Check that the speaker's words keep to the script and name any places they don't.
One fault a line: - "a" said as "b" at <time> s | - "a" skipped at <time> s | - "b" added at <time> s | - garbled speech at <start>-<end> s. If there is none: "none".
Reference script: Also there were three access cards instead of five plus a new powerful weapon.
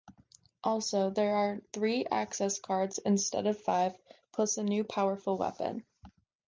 - "were" said as "are" at 1.4 s